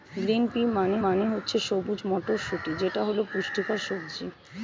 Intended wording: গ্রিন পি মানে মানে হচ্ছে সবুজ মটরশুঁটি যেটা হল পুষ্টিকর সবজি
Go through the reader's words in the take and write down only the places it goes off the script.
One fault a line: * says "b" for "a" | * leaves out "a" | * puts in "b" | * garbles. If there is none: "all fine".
all fine